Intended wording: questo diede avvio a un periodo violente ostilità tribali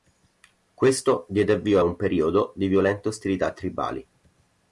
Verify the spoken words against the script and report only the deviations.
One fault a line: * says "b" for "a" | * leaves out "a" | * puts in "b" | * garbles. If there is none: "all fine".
* puts in "di"